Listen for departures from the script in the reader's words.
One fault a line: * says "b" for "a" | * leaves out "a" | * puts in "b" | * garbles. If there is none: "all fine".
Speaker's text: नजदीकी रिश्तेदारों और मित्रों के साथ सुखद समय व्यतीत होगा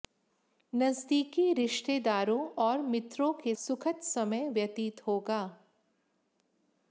* leaves out "साथ"